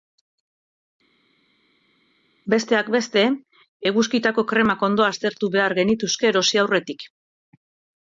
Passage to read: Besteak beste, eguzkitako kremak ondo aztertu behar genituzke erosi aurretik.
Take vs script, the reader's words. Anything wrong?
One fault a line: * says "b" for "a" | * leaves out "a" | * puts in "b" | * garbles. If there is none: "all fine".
all fine